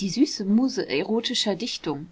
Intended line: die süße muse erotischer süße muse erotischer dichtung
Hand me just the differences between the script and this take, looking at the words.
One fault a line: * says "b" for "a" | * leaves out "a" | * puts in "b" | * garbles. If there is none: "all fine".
* leaves out "süße muse erotischer"